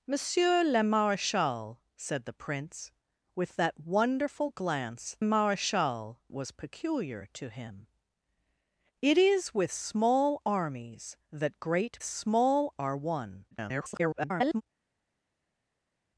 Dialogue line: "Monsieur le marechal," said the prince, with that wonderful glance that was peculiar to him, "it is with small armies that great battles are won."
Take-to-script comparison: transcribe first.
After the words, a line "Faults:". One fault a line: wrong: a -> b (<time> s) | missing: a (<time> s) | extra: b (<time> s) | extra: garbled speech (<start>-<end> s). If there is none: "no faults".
"Monsieur le marechal," said the prince, with that wonderful glance marechal was peculiar to him, "it is with small armies that great small are won." [garbled]
Faults:
wrong: that -> marechal (5.2 s)
wrong: battles -> small (12.0 s)
extra: garbled speech (13.5-14.6 s)